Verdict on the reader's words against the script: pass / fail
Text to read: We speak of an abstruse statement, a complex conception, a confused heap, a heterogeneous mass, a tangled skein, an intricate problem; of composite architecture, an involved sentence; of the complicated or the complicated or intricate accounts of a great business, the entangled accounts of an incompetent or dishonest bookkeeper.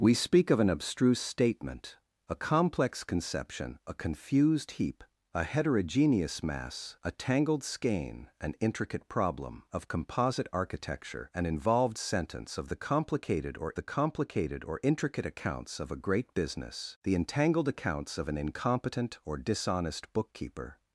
pass